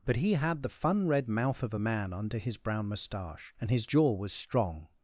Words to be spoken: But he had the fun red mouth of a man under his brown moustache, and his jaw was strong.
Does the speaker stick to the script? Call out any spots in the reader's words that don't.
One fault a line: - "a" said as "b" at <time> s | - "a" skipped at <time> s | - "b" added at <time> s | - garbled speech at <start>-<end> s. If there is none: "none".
none